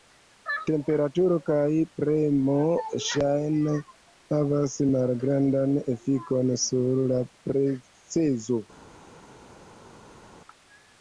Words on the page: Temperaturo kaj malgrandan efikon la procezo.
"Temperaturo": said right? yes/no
yes